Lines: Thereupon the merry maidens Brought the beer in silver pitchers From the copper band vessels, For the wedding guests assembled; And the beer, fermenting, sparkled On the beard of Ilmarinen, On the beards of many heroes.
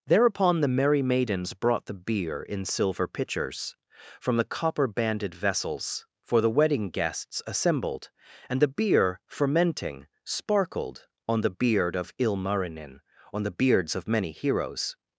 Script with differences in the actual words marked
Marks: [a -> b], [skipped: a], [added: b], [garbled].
Thereupon the merry maidens Brought the beer in silver pitchers From the copper [band -> banded] vessels, For the wedding guests assembled; And the beer, fermenting, sparkled On the beard of Ilmarinen, On the beards of many heroes.